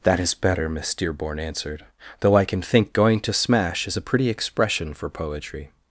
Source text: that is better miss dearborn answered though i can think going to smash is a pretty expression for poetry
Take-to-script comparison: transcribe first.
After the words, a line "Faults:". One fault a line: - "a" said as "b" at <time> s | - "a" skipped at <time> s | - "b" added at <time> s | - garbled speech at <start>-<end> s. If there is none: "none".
that is better miss dearborn answered though i can think going to smash is a pretty expression for poetry
Faults:
none